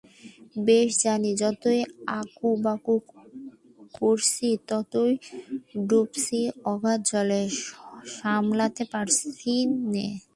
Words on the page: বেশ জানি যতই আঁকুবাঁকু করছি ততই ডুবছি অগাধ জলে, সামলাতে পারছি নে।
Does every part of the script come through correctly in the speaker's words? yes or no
yes